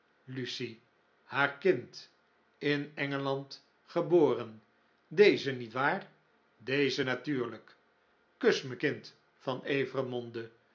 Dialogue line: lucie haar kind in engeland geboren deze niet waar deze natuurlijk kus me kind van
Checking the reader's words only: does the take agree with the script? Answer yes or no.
yes